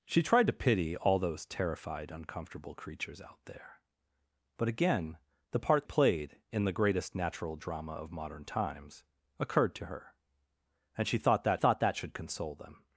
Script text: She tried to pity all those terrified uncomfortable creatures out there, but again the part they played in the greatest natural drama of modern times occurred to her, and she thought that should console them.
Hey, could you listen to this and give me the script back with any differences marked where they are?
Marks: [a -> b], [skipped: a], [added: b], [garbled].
She tried to pity all those terrified uncomfortable creatures out there, but again the part [skipped: they] played in the greatest natural drama of modern times occurred to her, and she thought that [added: thought that] should console them.